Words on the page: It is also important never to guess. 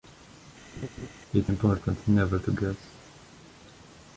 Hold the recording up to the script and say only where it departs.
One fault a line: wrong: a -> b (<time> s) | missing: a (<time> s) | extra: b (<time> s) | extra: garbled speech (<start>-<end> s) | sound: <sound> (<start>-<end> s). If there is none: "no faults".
sound: laugh (0.8-1.1 s)
missing: is also (1.5 s)